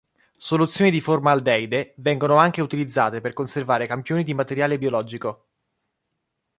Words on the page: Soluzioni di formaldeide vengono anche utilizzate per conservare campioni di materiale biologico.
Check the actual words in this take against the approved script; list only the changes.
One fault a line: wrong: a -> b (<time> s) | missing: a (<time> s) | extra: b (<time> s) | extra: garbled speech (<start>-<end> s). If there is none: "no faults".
no faults